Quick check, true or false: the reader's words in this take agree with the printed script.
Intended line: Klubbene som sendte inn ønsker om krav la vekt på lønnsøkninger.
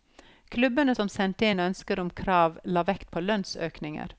true